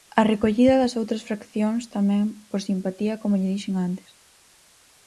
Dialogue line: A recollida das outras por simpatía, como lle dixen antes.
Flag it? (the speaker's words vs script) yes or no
yes